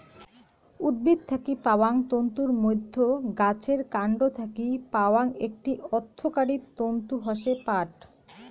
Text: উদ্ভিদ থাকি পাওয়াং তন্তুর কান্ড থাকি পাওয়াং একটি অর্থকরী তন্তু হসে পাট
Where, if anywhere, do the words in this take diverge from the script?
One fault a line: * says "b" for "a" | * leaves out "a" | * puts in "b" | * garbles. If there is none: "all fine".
* puts in "মইধ্যে গাছের"